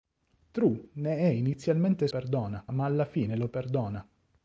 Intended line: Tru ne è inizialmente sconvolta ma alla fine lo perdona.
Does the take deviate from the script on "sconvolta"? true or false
true